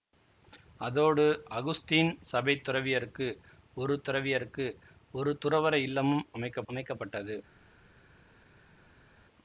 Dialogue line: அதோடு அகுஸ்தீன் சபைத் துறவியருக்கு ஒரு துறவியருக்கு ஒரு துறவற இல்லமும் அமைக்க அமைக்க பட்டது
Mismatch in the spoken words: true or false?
false